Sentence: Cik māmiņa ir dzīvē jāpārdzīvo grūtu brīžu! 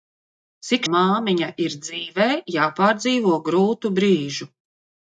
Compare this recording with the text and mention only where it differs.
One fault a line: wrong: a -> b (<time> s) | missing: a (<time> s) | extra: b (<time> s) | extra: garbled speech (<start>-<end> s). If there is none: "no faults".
no faults